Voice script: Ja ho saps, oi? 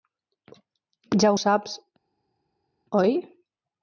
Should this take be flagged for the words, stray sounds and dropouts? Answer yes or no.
no